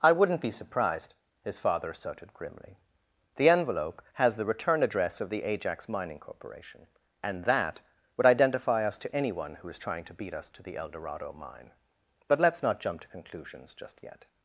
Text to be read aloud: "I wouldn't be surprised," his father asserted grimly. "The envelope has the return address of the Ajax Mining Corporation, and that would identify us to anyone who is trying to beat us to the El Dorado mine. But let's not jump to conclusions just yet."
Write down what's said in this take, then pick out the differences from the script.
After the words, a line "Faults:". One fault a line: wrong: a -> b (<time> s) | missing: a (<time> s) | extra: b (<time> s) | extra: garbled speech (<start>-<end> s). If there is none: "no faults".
"I wouldn't be surprised," his father asserted grimly. "The envelope has the return address of the Ajax Mining Corporation, and that would identify us to anyone who is trying to beat us to the El Dorado mine. But let's not jump to conclusions just yet."
Faults:
no faults